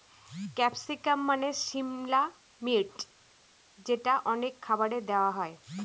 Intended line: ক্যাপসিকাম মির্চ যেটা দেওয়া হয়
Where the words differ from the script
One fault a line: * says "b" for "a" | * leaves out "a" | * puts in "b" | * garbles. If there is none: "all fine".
* puts in "মানে সিমলা"
* puts in "অনেক খাবারে"